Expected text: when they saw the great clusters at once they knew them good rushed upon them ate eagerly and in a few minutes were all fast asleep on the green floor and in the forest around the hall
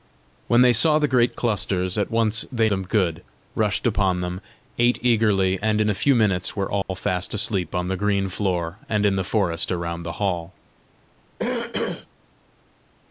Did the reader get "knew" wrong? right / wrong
wrong